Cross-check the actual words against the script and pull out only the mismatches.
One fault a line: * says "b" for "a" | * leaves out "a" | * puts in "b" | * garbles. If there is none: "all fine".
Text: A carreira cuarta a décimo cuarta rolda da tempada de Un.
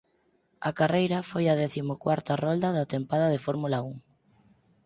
* says "foi" for "cuarta"
* puts in "Fórmula"